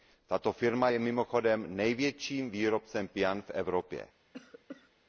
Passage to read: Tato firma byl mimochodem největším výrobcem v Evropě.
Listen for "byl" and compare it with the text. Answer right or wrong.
wrong